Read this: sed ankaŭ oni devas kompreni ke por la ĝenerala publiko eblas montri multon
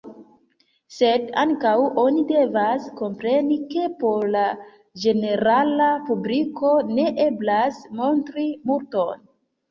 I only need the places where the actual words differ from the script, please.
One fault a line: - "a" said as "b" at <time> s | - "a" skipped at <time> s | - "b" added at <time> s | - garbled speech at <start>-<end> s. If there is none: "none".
- "ne" added at 7.0 s